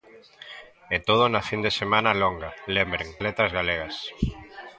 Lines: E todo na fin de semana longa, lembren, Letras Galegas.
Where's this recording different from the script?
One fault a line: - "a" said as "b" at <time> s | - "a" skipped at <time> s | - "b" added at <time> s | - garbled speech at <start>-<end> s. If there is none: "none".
none